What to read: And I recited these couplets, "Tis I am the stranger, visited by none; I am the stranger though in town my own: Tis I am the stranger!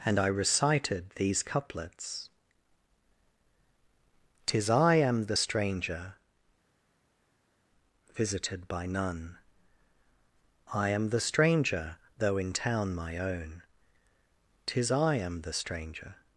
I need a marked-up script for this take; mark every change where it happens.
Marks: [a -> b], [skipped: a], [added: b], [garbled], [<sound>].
And I recited these couplets, "Tis I am the stranger, visited by none; I am the stranger though in town my own: Tis I am the stranger!